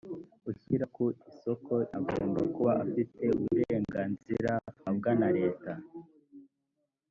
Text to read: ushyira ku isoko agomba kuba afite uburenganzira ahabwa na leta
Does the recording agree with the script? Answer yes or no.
yes